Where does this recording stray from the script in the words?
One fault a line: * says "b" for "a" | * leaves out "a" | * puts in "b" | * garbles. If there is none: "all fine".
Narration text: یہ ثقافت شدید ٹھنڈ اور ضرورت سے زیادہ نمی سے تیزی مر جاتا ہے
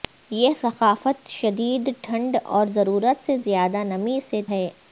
* leaves out "تیزی مر جاتا"